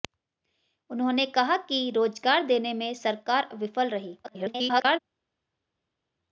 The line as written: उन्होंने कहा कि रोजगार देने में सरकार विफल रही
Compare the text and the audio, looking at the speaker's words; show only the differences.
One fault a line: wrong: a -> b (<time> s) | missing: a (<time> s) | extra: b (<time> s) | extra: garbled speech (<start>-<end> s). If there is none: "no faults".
extra: garbled speech (4.2-5.0 s)